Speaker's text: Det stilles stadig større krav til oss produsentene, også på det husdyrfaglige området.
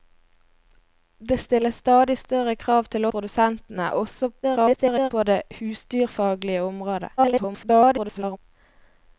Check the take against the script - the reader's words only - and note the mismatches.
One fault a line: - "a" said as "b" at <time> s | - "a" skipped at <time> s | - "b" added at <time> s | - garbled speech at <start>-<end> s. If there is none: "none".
- "oss" skipped at 3.0 s
- garbled speech at 4.4-5.1 s
- garbled speech at 7.2-8.4 s